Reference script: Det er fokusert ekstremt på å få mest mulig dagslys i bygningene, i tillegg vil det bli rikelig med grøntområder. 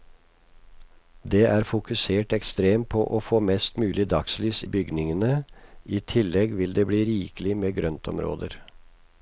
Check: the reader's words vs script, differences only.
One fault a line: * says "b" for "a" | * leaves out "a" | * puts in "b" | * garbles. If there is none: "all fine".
all fine